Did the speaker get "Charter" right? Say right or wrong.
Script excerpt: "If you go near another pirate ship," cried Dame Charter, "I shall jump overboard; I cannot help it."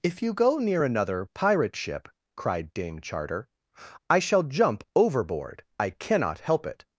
right